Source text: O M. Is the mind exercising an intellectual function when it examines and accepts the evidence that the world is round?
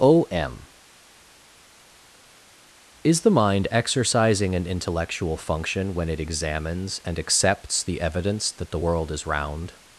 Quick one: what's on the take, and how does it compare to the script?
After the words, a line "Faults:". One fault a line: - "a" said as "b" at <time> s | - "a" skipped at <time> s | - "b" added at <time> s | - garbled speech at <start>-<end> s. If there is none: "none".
O M. Is the mind exercising an intellectual function when it examines and accepts the evidence that the world is round?
Faults:
none